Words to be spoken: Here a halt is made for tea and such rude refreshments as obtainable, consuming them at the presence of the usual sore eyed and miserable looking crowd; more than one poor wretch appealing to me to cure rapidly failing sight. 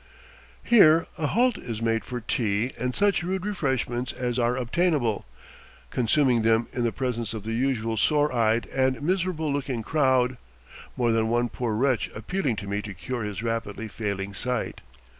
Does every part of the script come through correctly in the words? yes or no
no